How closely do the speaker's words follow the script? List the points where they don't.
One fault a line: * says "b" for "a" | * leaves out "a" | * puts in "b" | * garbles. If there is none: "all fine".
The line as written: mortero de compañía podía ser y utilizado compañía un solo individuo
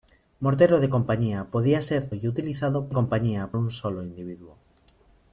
all fine